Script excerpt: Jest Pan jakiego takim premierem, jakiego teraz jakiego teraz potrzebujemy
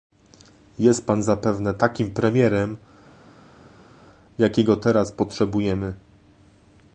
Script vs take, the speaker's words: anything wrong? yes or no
yes